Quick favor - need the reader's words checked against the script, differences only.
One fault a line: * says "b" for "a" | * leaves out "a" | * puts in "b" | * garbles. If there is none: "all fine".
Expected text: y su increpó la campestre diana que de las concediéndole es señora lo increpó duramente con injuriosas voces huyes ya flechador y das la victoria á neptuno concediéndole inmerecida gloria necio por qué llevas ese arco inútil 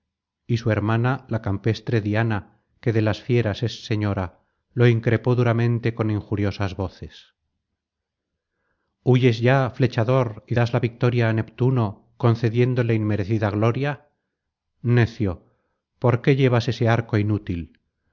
* says "hermana" for "increpó"
* says "fieras" for "concediéndole"